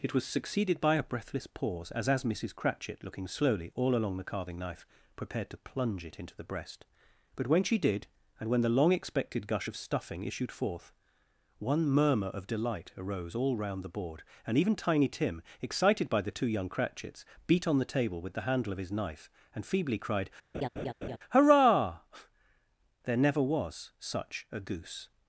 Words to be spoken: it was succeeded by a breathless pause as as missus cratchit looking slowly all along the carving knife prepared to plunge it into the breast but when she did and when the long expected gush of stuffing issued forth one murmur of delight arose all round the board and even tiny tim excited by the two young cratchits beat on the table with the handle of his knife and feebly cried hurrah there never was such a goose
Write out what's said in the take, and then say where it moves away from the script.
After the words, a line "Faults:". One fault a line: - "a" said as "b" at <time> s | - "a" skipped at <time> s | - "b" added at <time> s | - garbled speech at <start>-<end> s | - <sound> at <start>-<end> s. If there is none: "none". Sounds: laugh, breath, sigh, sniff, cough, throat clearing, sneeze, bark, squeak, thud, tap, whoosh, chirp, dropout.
it was succeeded by a breathless pause as as missus cratchit looking slowly all along the carving knife prepared to plunge it into the breast but when she did and when the long expected gush of stuffing issued forth one murmur of delight arose all round the board and even tiny tim excited by the two young cratchits beat on the table with the handle of his knife and feebly cried hurrah there never was such a goose
Faults:
- laugh at 20.5-21.2 s